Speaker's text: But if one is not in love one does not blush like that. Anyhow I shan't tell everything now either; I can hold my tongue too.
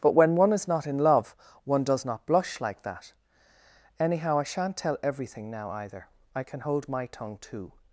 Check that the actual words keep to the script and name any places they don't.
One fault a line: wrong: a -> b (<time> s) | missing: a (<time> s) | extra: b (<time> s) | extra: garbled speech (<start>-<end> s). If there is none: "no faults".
wrong: if -> when (0.1 s)